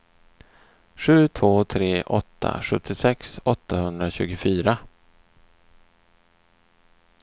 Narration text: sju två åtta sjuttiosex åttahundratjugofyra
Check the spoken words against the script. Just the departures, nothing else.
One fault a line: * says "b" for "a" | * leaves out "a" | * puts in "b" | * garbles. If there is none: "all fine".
* puts in "tre"